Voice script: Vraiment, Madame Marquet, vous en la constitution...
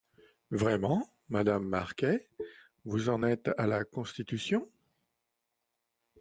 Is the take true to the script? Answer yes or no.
no